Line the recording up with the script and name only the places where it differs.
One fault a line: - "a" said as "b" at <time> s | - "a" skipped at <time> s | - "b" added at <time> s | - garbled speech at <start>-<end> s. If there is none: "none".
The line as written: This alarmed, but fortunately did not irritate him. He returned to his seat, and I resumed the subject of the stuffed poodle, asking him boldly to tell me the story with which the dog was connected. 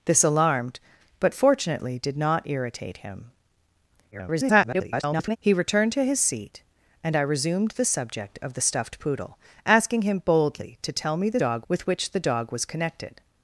- garbled speech at 4.1-5.4 s
- "story" said as "dog" at 11.3 s